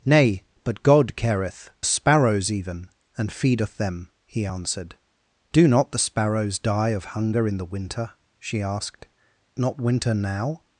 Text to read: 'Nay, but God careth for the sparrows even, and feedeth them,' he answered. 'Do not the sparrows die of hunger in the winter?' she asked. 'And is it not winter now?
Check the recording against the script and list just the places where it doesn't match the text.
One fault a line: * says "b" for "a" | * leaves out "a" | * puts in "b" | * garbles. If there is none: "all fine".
* leaves out "for the"
* leaves out "And is it"